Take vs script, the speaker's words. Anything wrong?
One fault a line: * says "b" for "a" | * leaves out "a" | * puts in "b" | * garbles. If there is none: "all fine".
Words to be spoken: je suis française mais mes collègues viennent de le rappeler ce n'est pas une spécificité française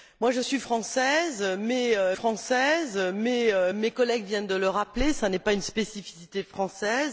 * puts in "française mais"